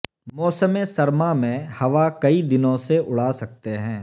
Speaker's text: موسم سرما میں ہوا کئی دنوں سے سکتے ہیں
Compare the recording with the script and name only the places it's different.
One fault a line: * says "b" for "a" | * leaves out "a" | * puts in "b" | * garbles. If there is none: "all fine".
* puts in "اڑا"